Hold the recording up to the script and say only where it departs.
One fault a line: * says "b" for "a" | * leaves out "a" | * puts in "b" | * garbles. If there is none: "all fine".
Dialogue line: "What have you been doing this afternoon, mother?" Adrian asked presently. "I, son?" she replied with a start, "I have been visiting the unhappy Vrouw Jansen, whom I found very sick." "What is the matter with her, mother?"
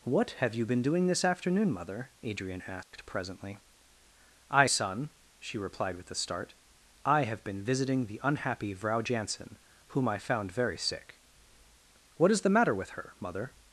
all fine